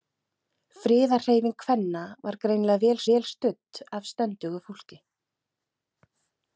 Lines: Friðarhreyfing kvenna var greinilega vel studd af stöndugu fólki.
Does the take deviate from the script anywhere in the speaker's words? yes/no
yes